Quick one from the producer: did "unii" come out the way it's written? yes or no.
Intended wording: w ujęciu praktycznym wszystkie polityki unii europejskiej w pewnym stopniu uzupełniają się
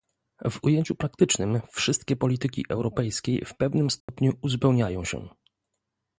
no